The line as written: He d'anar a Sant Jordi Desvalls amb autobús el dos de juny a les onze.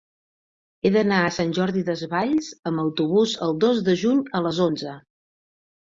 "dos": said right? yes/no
yes